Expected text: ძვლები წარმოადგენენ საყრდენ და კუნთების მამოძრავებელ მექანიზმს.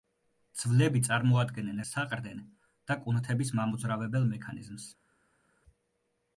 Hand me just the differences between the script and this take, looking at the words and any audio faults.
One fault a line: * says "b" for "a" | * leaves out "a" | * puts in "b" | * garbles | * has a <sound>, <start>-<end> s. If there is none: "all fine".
all fine